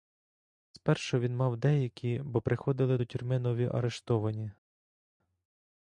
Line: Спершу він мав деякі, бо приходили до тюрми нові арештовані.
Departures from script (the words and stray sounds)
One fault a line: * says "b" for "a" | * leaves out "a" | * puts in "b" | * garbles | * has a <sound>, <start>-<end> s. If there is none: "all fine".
all fine